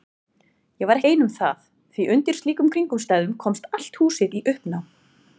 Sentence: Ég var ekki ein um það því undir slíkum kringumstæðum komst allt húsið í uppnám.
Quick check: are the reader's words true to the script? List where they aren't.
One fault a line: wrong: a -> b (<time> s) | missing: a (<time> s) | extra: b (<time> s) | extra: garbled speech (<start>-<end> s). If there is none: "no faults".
missing: ekki (1.0 s)